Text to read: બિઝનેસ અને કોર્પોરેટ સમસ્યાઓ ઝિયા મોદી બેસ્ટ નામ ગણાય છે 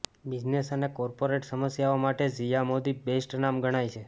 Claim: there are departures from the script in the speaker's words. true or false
true